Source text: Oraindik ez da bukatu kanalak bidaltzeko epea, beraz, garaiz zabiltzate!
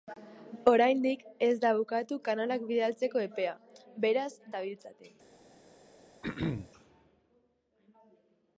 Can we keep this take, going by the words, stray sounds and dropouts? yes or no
no